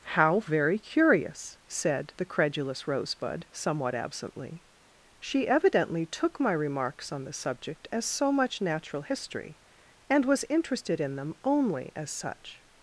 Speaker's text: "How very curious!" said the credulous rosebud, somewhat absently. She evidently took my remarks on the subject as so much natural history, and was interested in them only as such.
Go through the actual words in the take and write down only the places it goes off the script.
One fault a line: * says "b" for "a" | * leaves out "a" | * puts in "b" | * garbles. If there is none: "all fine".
all fine